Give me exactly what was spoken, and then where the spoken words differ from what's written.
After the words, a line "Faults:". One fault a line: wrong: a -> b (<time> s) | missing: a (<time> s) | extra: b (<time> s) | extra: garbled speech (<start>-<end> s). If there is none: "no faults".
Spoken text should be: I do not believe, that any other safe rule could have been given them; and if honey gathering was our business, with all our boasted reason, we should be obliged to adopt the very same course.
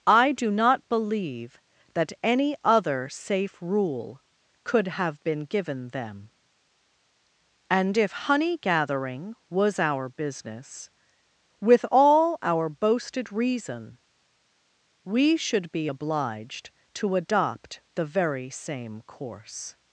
I do not believe, that any other safe rule could have been given them; and if honey gathering was our business, with all our boasted reason, we should be obliged to adopt the very same course.
Faults:
no faults